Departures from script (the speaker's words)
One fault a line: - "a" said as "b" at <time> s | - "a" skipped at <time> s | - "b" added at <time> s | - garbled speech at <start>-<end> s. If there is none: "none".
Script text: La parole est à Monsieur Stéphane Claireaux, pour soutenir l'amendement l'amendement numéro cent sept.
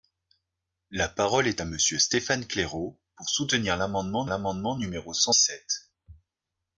none